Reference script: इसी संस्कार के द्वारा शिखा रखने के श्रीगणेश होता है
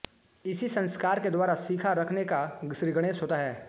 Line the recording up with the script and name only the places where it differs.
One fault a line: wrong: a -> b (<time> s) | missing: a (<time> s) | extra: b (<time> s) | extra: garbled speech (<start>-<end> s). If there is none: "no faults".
wrong: के -> का (2.3 s)